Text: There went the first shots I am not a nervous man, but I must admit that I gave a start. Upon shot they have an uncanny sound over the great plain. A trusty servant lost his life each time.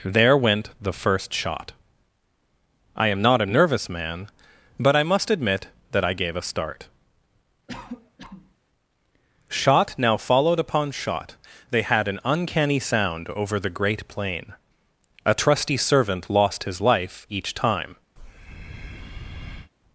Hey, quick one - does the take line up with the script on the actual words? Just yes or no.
no